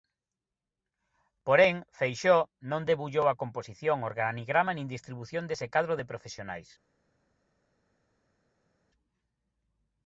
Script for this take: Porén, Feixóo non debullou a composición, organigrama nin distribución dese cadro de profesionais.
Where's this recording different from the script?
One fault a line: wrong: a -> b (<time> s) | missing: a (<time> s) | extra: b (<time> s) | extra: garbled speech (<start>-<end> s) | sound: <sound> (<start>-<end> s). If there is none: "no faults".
no faults